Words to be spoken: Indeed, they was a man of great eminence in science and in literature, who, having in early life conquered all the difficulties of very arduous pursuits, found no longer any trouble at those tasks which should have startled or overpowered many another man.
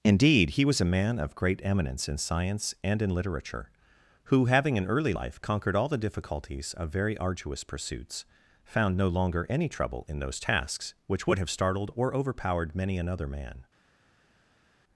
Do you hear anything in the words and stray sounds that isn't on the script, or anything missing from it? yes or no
yes